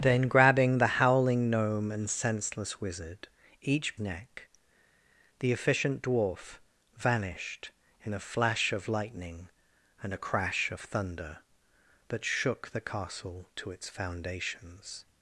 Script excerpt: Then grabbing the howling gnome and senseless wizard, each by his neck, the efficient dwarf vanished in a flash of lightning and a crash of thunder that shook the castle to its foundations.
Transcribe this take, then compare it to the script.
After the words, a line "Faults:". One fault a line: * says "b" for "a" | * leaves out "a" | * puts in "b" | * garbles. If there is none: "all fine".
Then grabbing the howling gnome and senseless wizard, each neck, the efficient dwarf vanished in a flash of lightning and a crash of thunder that shook the castle to its foundations.
Faults:
* leaves out "by his"